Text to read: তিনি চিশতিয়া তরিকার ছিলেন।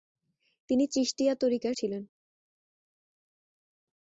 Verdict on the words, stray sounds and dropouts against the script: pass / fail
pass